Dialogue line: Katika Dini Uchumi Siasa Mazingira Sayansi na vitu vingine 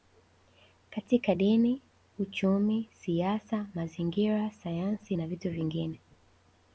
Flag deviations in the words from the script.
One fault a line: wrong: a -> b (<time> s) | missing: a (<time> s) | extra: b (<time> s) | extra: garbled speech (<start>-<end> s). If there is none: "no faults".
no faults